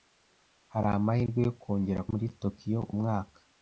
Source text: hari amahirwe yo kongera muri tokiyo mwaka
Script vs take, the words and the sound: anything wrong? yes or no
no